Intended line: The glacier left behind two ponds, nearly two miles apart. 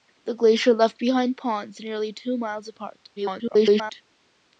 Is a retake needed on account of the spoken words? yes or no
yes